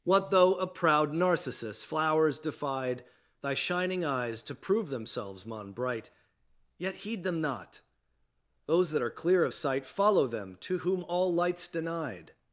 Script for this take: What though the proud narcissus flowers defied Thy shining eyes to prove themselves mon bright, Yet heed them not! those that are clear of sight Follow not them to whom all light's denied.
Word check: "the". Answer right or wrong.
wrong